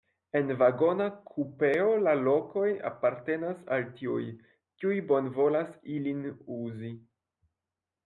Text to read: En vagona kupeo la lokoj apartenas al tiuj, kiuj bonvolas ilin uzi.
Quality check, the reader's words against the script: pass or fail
pass